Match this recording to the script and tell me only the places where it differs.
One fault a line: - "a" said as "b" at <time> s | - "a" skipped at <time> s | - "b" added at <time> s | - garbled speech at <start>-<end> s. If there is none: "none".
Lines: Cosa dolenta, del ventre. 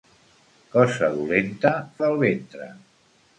none